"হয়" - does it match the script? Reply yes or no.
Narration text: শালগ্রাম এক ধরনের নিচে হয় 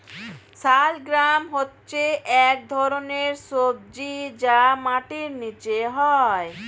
yes